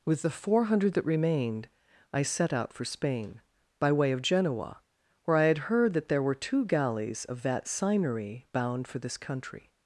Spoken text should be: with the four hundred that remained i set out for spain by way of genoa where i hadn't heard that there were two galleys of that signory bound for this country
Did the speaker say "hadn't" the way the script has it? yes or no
no